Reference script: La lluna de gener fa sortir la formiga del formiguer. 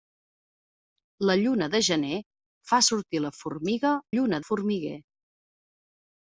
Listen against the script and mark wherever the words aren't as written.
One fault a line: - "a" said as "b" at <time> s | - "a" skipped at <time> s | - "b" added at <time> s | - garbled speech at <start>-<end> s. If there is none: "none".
- "del" said as "lluna" at 4.1 s